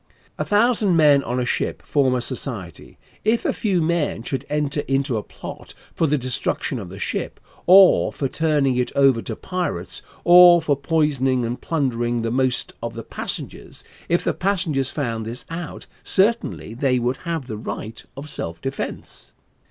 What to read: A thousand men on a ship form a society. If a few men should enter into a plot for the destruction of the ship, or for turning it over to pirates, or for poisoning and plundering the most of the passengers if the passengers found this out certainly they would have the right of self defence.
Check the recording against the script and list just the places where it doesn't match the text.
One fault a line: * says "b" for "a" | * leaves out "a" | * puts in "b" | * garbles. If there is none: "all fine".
all fine